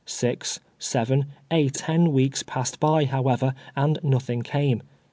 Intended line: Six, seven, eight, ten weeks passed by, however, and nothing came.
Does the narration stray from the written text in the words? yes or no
no